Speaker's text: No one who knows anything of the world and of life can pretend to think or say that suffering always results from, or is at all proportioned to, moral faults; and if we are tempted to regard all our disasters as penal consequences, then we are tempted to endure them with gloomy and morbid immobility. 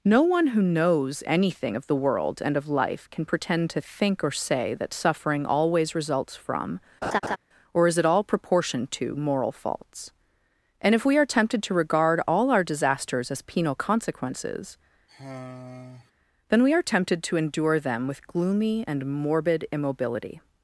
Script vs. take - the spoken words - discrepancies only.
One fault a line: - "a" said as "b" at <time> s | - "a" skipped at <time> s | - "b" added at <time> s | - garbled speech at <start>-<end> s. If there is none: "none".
none